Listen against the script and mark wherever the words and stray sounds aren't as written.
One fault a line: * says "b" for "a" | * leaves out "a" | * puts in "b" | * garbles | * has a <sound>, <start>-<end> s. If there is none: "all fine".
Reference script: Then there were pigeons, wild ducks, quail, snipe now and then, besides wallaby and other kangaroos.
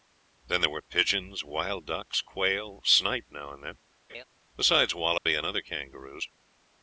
* has a laugh, 4.1-4.2 s
* has a dropout, 5.2-5.3 s